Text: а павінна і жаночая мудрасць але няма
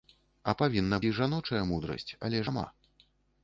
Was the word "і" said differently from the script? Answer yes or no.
no